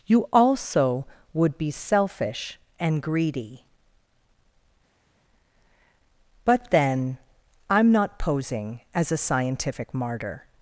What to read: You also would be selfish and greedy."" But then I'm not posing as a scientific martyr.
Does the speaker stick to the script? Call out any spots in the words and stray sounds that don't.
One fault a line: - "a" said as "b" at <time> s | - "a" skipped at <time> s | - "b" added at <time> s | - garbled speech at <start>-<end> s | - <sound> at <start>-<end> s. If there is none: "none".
none